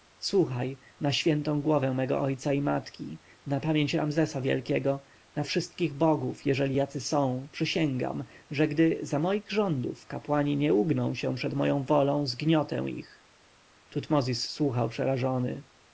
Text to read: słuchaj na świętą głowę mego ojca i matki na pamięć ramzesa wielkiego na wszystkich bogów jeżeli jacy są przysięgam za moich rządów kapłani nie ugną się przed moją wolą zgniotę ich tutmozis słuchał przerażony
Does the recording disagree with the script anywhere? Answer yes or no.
yes